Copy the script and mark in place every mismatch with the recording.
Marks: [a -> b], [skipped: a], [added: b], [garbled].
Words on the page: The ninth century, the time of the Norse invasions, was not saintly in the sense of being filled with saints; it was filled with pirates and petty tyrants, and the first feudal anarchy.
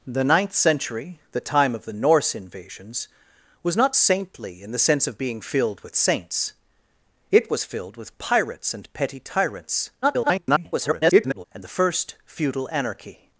The ninth century, the time of the Norse invasions, was not saintly in the sense of being filled with saints; it was filled with pirates and petty tyrants, [garbled] and the first feudal anarchy.